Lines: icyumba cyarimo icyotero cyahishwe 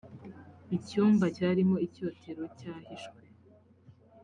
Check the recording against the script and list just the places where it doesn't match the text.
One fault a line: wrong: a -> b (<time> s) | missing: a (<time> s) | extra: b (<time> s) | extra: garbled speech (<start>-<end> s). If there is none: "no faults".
no faults